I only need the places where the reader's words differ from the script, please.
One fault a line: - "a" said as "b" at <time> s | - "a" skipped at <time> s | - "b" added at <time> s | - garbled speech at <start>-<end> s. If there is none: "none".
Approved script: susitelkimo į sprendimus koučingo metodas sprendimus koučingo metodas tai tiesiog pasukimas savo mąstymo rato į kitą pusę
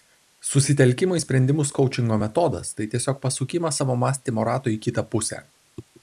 - "sprendimus koučingo metodas" skipped at 2.7 s